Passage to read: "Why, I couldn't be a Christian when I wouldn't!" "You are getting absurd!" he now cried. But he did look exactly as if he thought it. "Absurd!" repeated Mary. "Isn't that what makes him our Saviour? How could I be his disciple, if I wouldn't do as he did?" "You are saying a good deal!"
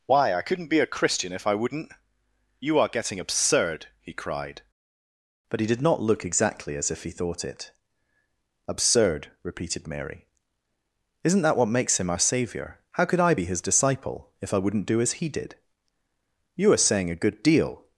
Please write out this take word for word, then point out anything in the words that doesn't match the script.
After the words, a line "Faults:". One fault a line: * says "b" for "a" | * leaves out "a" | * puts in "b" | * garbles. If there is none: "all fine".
"Why, I couldn't be a Christian if I wouldn't!" "You are getting absurd!" he cried. But he did not look exactly as if he thought it. "Absurd!" repeated Mary. "Isn't that what makes him our Saviour? How could I be his disciple, if I wouldn't do as he did?" "You are saying a good deal!"
Faults:
* says "if" for "when"
* leaves out "now"
* puts in "not"